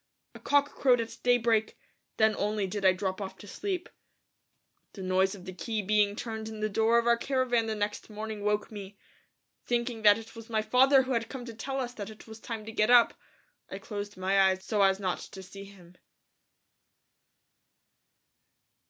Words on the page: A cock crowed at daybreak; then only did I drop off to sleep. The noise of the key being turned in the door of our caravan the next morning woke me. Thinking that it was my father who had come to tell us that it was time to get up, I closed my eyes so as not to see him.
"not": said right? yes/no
yes